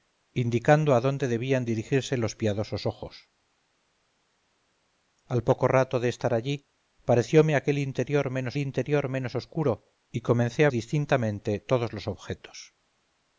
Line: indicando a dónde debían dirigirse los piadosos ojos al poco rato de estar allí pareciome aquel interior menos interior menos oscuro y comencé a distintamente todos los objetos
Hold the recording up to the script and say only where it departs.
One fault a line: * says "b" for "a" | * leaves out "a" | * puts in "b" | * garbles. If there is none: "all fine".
all fine